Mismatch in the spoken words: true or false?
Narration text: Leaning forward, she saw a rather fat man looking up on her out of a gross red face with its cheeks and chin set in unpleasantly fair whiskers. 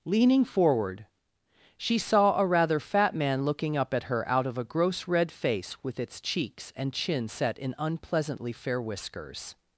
true